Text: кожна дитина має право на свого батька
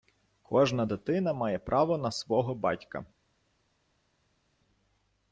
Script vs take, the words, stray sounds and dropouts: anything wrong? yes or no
no